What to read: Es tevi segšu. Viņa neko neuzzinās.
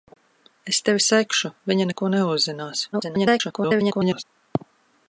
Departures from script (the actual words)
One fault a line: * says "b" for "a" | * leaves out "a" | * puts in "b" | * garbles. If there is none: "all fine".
* garbles